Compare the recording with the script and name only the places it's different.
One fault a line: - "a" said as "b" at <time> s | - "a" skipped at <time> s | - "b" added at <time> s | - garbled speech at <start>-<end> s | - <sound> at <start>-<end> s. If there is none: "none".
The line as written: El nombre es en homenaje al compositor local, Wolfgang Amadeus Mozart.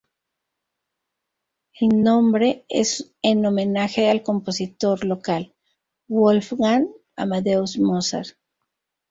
none